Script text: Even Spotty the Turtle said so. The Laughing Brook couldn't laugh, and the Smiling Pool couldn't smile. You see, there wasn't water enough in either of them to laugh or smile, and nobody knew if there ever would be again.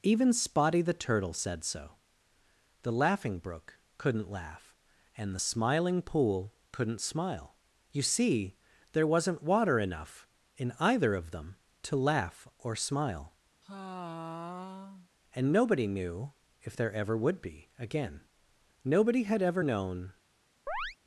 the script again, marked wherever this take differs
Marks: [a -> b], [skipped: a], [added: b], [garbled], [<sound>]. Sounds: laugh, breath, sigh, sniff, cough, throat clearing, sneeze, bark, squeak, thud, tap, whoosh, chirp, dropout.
Even Spotty the Turtle said so. The Laughing Brook couldn't laugh, and the Smiling Pool couldn't smile. You see, there wasn't water enough in either of them to laugh or smile, [sigh] and nobody knew if there ever would be again. [added: Nobody had ever known] [chirp]